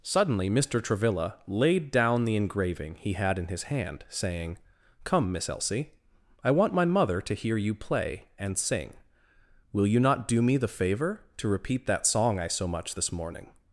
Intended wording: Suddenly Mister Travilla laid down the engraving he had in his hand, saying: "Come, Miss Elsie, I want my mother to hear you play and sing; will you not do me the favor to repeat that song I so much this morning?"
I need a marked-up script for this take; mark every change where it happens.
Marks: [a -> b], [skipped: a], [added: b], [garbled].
Suddenly Mister Travilla laid down the engraving he had in his hand, saying: "Come, Miss Elsie, I want my mother to hear you play and sing; will you not do me the favor to repeat that song I so much this morning?"